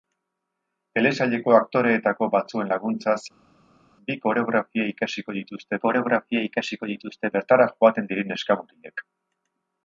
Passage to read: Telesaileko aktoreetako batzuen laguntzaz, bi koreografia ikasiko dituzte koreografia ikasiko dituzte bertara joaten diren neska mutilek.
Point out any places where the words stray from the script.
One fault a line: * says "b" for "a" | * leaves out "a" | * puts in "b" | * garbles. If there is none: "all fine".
all fine